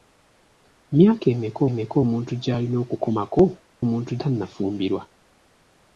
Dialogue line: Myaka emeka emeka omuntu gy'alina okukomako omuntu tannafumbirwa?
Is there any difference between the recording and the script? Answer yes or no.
no